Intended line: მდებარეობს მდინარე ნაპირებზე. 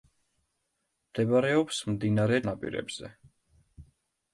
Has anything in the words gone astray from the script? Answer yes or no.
no